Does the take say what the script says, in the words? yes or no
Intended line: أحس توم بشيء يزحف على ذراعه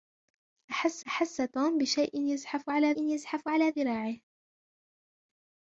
no